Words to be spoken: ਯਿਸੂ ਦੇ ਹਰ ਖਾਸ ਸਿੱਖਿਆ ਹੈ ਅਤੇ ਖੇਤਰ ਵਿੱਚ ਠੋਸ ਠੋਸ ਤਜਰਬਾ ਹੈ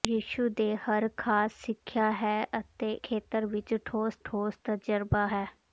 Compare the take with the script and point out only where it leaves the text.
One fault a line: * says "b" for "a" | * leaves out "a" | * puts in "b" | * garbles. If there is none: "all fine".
all fine